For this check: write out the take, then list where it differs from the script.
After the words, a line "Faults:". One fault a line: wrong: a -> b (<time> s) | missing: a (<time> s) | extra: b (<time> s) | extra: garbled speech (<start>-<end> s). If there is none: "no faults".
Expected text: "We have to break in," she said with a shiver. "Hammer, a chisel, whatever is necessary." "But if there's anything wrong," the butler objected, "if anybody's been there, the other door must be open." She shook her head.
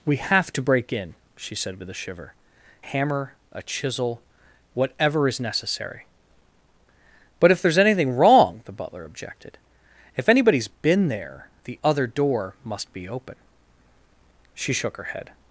"We have to break in," she said with a shiver. "Hammer, a chisel, whatever is necessary." "But if there's anything wrong," the butler objected, "if anybody's been there, the other door must be open." She shook her head.
Faults:
no faults